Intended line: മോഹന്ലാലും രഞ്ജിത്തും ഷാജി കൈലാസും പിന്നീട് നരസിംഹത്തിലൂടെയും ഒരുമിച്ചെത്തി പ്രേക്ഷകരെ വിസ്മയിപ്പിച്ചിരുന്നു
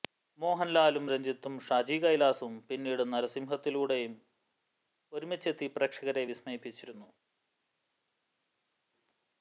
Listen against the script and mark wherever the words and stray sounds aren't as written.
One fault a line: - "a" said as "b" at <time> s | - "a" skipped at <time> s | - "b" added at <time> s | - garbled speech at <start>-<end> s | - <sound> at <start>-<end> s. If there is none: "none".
none